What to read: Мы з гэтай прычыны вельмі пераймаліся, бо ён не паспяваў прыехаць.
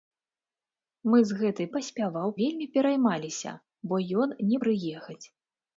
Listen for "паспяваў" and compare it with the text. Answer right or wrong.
wrong